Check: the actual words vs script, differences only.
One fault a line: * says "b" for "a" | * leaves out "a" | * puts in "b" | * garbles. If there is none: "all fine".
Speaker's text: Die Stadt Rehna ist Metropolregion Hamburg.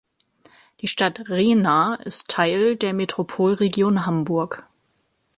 * puts in "Teil der"